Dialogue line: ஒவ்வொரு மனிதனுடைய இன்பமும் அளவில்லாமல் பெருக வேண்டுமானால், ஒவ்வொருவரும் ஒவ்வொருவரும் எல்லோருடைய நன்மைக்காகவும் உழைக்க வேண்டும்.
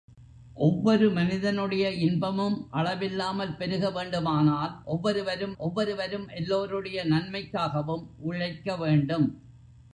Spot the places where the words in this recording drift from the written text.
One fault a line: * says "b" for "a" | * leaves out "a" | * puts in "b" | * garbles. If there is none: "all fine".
all fine